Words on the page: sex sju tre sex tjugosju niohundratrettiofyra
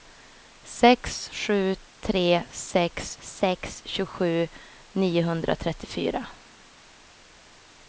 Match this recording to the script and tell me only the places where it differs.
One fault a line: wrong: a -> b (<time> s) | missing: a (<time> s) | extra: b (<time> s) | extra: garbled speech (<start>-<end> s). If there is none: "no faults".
extra: sex (3.2 s)